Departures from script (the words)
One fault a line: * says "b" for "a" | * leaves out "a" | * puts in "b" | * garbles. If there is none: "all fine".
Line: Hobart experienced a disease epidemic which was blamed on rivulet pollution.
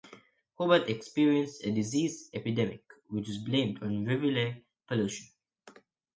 all fine